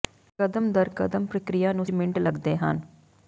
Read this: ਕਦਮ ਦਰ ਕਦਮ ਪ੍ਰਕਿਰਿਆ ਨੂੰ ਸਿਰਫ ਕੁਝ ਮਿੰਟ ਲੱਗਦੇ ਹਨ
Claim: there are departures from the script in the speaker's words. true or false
true